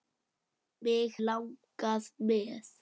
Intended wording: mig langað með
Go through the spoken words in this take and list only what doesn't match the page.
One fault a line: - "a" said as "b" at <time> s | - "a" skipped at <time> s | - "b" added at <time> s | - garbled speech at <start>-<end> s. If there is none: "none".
none